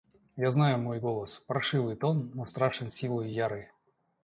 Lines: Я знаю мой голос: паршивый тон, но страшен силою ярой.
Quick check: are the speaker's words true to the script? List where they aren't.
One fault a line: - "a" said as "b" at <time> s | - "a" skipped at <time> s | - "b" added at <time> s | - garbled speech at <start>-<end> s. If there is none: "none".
none